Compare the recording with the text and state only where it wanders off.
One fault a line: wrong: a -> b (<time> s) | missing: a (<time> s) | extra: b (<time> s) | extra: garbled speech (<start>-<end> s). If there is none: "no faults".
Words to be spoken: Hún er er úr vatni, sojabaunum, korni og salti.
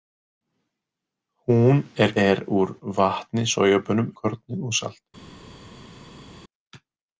no faults